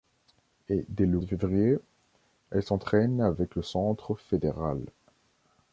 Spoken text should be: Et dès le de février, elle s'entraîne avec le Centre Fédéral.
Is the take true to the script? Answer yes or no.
yes